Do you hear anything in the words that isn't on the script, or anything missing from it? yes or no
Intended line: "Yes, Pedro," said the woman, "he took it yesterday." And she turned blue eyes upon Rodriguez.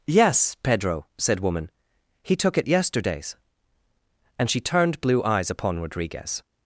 yes